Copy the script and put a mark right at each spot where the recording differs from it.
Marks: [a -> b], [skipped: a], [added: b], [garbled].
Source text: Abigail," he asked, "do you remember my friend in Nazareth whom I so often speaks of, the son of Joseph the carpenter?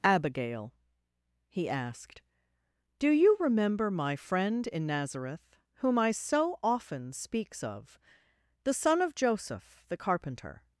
Abigail," he asked, "do you remember my friend in Nazareth whom I so often speaks of, the son of Joseph the carpenter?